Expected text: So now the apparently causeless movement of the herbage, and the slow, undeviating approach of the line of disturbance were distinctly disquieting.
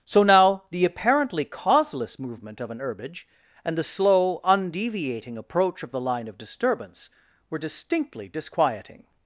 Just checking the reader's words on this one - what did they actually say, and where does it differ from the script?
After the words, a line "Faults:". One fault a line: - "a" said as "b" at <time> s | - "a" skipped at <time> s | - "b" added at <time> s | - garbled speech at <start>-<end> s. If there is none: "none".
So now the apparently causeless movement of an herbage, and the slow, undeviating approach of the line of disturbance were distinctly disquieting.
Faults:
- "the" said as "an" at 2.7 s